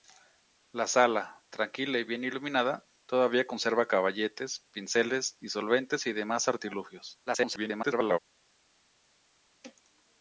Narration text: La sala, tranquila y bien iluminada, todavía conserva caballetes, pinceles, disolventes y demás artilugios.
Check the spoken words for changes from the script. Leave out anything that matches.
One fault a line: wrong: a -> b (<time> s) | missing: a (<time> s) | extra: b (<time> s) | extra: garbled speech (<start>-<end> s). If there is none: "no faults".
extra: garbled speech (7.3-8.2 s)